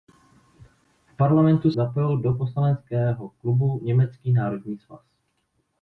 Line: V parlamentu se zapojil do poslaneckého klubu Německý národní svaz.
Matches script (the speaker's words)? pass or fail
fail